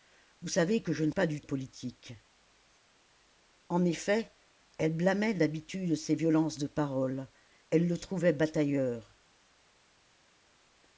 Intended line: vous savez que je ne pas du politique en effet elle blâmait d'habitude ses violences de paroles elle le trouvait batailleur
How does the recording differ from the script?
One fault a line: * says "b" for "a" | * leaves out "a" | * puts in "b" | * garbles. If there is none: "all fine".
all fine